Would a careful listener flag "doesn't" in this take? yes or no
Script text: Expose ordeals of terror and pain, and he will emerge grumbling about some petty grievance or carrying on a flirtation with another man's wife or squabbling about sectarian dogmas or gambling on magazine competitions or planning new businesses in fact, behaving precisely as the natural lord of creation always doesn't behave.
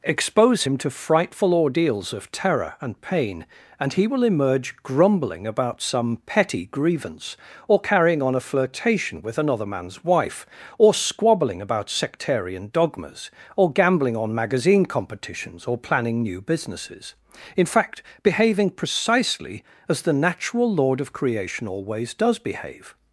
yes